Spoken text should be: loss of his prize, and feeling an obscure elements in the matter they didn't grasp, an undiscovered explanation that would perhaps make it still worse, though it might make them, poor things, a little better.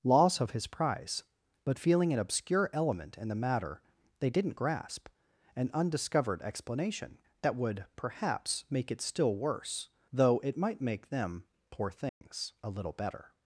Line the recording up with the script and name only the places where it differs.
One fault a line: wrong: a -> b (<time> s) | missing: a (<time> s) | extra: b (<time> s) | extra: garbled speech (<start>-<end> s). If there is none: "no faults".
wrong: and -> but (1.6 s)
wrong: elements -> element (2.7 s)